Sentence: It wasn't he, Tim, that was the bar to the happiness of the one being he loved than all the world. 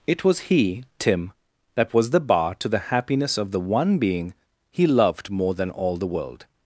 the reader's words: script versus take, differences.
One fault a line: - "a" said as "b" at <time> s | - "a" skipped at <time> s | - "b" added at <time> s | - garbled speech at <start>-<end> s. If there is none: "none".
- "wasn't" said as "was" at 0.2 s
- "more" added at 5.3 s